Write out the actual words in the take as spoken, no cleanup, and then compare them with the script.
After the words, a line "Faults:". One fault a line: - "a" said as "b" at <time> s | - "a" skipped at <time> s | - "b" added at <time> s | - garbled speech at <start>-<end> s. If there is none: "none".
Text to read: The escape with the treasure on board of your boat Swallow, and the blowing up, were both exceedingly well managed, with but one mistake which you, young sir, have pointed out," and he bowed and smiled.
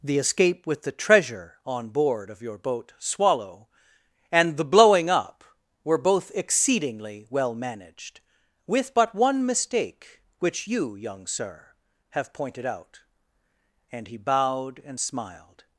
The escape with the treasure on board of your boat Swallow, and the blowing up, were both exceedingly well managed, with but one mistake which you, young sir, have pointed out," and he bowed and smiled.
Faults:
none